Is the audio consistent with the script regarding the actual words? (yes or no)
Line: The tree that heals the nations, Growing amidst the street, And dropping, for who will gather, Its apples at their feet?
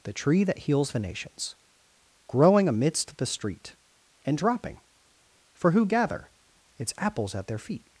no